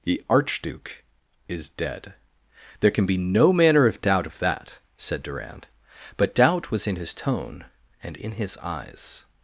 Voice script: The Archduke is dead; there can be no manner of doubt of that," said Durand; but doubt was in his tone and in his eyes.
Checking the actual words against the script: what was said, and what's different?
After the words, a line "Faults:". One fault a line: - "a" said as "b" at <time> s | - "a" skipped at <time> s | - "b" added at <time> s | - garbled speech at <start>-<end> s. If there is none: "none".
The Archduke is dead; there can be no manner of doubt of that," said Durand; but doubt was in his tone and in his eyes.
Faults:
none